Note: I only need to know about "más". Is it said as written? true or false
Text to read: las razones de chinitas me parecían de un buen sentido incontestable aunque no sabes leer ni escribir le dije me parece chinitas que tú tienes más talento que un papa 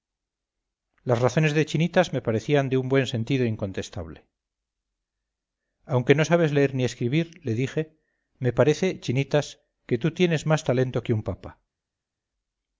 true